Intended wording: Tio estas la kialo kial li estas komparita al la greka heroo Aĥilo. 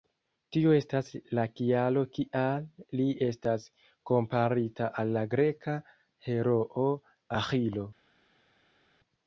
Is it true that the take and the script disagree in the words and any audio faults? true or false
false